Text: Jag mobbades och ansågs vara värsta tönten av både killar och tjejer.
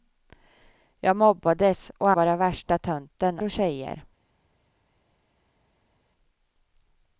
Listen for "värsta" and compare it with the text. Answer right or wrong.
right